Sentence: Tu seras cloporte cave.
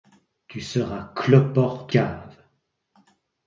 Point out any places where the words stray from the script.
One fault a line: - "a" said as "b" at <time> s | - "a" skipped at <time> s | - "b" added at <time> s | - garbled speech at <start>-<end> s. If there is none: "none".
none